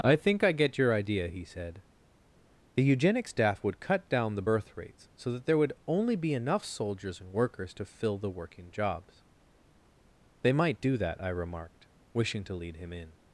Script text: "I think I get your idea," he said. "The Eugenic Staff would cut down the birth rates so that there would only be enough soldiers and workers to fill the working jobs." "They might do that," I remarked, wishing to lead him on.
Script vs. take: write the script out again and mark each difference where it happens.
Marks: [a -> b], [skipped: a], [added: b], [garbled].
"I think I get your idea," he said. "The Eugenic Staff would cut down the birth rates so that there would only be enough soldiers and workers to fill the working jobs." "They might do that," I remarked, wishing to lead him [on. -> in]